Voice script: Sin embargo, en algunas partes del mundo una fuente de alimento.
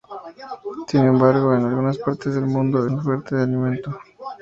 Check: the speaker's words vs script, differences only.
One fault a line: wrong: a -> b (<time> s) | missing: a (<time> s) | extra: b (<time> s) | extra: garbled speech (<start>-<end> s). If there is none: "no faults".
no faults